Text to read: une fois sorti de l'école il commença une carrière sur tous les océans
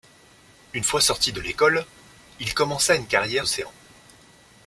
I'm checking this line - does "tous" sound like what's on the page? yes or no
no